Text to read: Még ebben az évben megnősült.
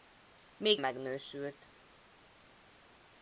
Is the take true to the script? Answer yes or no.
no